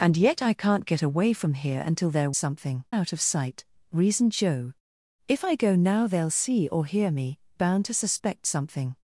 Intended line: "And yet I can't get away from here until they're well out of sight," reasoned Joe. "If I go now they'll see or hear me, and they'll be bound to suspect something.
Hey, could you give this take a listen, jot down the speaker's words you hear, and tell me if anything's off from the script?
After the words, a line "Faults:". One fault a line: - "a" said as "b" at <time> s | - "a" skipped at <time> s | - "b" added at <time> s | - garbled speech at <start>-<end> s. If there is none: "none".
"And yet I can't get away from here until they're something out of sight," reasoned Joe. "If I go now they'll see or hear me, bound to suspect something.
Faults:
- "well" said as "something" at 2.4 s
- "and they'll be" skipped at 7.4 s